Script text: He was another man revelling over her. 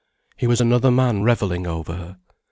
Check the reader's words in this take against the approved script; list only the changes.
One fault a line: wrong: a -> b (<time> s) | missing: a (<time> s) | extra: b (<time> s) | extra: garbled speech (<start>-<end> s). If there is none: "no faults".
no faults